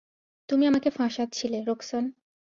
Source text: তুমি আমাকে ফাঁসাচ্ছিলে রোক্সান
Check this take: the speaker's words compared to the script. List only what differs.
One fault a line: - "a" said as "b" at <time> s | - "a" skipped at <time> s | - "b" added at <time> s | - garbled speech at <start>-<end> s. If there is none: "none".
none